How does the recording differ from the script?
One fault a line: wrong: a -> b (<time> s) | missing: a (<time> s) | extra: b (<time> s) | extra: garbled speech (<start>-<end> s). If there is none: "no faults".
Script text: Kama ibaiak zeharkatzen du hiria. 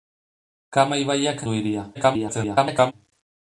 missing: zeharkatzen (1.4 s)
extra: garbled speech (1.9-2.9 s)